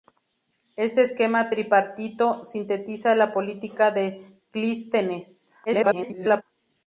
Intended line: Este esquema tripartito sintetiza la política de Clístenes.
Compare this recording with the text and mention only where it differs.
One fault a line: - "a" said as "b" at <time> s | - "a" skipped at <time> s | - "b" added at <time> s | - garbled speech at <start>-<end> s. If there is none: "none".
- garbled speech at 5.7-6.4 s